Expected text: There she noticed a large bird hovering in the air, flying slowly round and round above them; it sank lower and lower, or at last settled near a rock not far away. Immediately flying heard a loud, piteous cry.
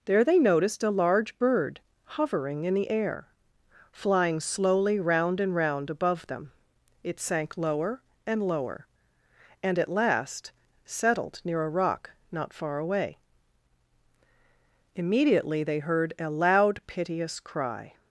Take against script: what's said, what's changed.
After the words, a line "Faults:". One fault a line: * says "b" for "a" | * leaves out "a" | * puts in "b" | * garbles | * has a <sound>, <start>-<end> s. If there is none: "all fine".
There they noticed a large bird hovering in the air, flying slowly round and round above them; it sank lower and lower, and at last settled near a rock not far away. Immediately they heard a loud, piteous cry.
Faults:
* says "they" for "she"
* says "and" for "or"
* says "they" for "flying"